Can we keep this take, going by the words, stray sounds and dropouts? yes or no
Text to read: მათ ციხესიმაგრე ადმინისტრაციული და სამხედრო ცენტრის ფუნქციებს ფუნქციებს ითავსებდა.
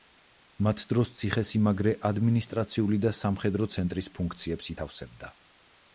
no